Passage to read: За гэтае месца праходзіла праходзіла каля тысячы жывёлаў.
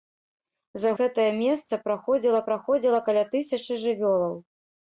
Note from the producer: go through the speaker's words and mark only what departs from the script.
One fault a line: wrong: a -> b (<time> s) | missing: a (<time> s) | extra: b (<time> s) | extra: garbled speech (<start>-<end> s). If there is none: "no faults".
no faults